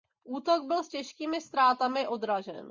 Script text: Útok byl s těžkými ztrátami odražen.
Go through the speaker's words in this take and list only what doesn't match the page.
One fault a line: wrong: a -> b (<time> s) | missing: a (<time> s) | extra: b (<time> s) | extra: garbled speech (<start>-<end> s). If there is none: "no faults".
no faults